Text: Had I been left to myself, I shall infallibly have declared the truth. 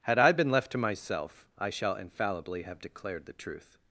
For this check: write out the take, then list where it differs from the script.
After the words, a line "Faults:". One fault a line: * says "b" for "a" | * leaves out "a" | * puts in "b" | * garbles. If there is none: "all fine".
Had I been left to myself, I shall infallibly have declared the truth.
Faults:
all fine